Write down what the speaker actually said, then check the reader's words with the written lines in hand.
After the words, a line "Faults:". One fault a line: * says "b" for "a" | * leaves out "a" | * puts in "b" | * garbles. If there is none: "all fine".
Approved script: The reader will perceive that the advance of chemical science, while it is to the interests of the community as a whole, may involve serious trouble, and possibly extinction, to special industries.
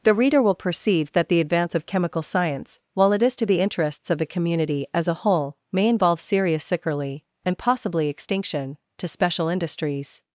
The reader will perceive that the advance of chemical science, while it is to the interests of the community as a whole, may involve serious sickerly, and possibly extinction, to special industries.
Faults:
* says "sickerly" for "trouble"